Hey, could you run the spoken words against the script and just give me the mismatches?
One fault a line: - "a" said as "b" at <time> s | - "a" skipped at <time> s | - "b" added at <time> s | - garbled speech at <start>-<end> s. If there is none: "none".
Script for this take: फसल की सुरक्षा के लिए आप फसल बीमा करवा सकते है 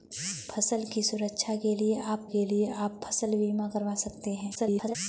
- "के लिए आप" added at 2.2 s
- garbled speech at 4.5-5.0 s